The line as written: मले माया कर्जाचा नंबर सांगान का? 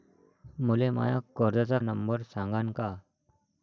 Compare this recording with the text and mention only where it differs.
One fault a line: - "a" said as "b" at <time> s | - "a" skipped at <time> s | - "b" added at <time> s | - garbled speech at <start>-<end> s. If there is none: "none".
none